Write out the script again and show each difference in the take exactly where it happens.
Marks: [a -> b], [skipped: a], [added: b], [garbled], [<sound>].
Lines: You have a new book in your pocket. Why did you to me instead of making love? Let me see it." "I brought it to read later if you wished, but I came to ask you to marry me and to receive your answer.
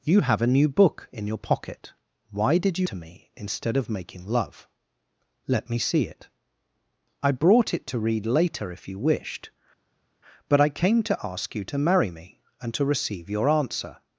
You have a new book in your pocket. Why did you to me instead of making love? Let me see it." "I brought it to read later if you wished, but I came to ask you to marry me and to receive your answer.